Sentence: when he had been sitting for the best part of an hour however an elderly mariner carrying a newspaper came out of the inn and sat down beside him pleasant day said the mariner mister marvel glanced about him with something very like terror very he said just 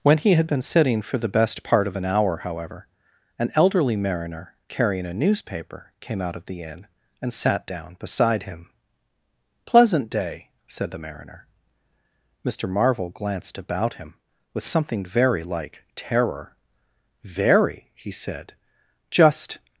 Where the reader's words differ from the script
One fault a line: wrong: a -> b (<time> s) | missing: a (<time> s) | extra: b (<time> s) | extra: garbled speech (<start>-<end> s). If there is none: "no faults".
no faults